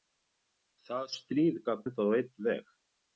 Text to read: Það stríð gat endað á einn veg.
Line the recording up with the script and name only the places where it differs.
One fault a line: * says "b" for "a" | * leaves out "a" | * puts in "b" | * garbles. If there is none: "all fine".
all fine